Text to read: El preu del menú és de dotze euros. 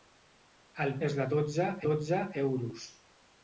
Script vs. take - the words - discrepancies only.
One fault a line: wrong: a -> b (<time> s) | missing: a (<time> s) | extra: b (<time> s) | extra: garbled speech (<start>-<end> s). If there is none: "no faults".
missing: preu del menú (0.9 s)
extra: dotze (1.9 s)